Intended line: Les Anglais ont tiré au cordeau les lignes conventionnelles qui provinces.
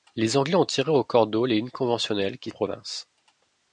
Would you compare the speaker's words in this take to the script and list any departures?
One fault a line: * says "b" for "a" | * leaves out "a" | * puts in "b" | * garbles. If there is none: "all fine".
all fine